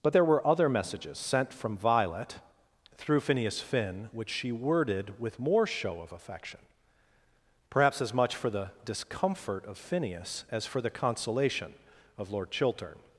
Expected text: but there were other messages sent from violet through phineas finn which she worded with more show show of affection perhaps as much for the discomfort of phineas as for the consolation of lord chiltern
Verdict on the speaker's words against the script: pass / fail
fail